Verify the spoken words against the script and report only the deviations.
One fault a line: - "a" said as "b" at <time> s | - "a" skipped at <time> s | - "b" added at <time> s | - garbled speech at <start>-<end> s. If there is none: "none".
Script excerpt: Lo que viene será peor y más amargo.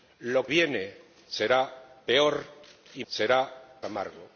- "que" skipped at 0.5 s
- "más" said as "será" at 3.1 s